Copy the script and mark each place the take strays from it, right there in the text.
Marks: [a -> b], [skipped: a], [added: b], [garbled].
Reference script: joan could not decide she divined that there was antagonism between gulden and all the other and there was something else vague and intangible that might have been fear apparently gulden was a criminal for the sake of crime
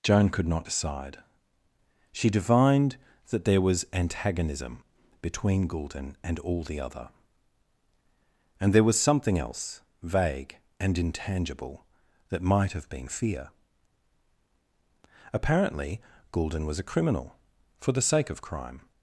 joan could not decide she divined that there was antagonism between gulden and all the other and there was something else vague and intangible that might have been fear apparently gulden was a criminal for the sake of crime